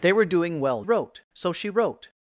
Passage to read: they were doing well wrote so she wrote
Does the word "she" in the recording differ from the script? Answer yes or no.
no